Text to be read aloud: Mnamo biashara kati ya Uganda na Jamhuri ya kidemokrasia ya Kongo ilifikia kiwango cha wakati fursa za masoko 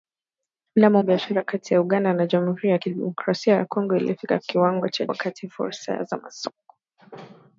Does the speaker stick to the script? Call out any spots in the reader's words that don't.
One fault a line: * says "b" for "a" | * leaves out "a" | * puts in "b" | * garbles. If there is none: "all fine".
all fine